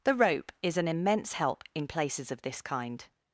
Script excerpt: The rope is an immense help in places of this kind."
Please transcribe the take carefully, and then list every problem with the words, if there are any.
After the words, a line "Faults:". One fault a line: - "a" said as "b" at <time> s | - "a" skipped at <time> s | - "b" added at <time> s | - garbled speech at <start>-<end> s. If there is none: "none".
The rope is an immense help in places of this kind."
Faults:
none